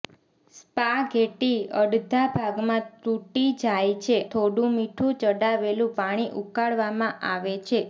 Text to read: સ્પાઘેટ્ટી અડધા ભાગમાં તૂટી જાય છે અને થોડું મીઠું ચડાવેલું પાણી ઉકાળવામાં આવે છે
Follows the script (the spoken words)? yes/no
no